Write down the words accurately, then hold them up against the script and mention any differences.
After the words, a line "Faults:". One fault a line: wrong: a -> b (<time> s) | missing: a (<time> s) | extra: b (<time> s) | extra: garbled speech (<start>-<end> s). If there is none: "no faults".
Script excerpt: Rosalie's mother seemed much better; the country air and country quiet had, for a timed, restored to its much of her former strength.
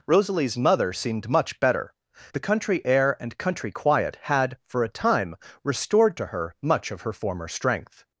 Rosalie's mother seemed much better; the country air and country quiet had, for a time, restored to her much of her former strength.
Faults:
wrong: timed -> time (4.9 s)
wrong: its -> her (6.3 s)